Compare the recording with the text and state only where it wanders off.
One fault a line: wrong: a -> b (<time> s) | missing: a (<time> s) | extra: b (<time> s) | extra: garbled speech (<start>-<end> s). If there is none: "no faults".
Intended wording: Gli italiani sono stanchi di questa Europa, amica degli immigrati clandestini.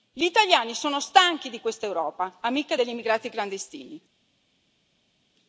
no faults